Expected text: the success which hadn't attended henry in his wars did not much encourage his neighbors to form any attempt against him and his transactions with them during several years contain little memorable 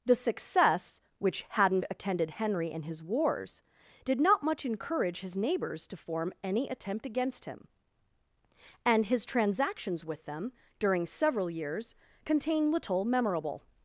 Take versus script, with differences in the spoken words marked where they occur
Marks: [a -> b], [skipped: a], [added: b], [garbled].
the success which hadn't attended henry in his wars did not much encourage his neighbors to form any attempt against him and his transactions with them during several years contain little memorable